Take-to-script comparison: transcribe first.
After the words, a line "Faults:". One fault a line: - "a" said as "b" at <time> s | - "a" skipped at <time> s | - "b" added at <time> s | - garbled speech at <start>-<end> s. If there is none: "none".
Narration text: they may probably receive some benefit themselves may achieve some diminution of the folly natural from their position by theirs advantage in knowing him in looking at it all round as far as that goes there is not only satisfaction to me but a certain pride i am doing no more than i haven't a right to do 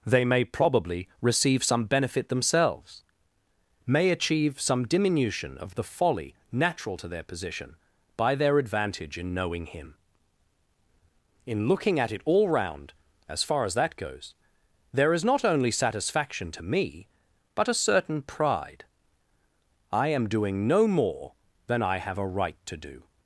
they may probably receive some benefit themselves may achieve some diminution of the folly natural to their position by their advantage in knowing him in looking at it all round as far as that goes there is not only satisfaction to me but a certain pride i am doing no more than i have a right to do
Faults:
- "from" said as "to" at 7.0 s
- "theirs" said as "their" at 8.3 s
- "haven't" said as "have" at 22.0 s